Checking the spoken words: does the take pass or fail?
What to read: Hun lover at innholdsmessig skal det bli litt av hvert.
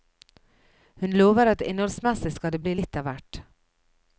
pass